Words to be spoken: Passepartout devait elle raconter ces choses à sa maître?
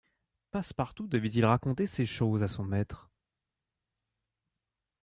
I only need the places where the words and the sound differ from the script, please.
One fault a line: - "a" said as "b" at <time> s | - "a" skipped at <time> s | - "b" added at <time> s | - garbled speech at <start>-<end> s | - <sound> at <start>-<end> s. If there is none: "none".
- "elle" said as "il" at 1.3 s
- "sa" said as "son" at 2.5 s